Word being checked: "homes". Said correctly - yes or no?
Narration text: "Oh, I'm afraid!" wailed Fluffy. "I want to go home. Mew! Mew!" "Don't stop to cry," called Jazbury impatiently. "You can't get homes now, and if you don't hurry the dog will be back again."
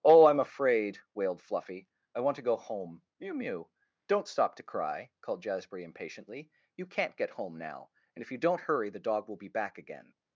no